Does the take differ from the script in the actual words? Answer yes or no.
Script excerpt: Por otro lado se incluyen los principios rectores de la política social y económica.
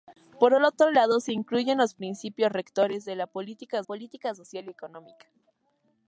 yes